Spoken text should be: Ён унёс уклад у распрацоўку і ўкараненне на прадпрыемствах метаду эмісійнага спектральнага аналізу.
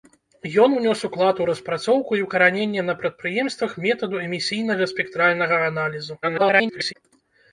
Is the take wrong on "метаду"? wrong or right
right